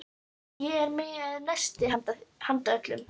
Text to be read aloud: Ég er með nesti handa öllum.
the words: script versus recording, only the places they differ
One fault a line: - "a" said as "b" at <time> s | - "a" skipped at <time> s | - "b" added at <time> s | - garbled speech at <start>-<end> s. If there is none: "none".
none